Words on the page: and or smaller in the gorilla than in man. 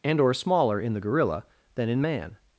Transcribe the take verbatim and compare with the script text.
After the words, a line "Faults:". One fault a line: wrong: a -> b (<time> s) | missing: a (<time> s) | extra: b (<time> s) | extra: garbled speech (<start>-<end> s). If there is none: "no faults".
and or smaller in the gorilla than in man.
Faults:
no faults